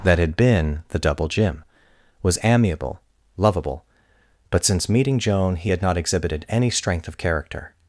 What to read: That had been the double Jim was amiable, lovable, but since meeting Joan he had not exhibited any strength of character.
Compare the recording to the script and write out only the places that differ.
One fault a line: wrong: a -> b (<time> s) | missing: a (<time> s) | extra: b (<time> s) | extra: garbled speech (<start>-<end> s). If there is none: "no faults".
no faults